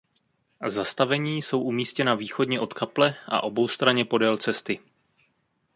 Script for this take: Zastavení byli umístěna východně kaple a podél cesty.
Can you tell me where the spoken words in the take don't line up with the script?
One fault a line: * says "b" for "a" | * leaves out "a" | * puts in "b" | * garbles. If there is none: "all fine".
* says "jsou" for "byli"
* puts in "od"
* puts in "oboustranně"